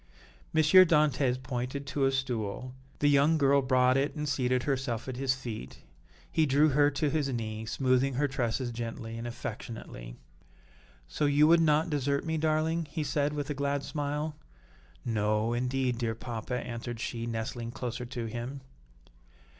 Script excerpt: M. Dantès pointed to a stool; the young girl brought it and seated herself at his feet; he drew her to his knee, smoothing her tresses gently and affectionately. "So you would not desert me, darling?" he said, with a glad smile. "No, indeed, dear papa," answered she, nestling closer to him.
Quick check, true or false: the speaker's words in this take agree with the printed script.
true